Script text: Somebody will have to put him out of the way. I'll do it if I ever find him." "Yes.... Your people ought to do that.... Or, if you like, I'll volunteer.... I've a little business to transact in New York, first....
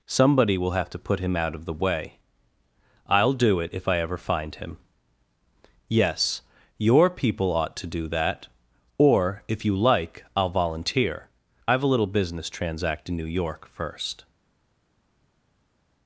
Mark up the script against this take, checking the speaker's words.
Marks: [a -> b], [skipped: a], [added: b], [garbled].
Somebody will have to put him out of the way. I'll do it if I ever find him." "Yes.... Your people ought to do that.... Or, if you like, I'll volunteer.... I've a little business [skipped: to] transact in New York, first....